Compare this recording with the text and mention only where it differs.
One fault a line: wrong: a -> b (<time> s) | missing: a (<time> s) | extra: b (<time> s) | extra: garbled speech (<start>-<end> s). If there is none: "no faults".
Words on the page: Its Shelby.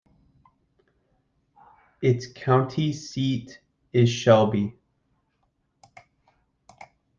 extra: county seat is (2.2 s)